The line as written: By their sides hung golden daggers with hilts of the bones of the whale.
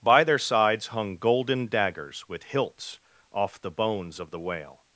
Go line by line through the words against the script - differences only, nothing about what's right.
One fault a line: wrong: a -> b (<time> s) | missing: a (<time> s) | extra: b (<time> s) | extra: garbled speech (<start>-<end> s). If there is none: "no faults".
wrong: of -> off (3.3 s)